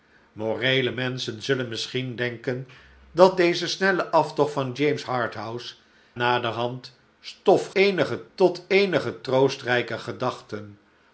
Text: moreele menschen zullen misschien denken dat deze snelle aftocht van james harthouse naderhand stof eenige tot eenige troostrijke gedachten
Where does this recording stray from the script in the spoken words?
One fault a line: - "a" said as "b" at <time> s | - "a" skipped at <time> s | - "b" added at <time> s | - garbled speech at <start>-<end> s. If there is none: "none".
none